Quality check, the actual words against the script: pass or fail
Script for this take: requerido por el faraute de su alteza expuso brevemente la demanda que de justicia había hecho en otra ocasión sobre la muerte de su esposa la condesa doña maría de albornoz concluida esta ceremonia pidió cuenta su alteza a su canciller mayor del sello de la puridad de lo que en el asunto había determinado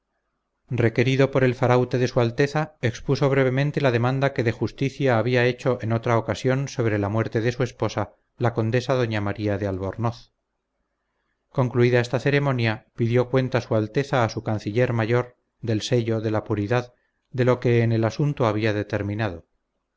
pass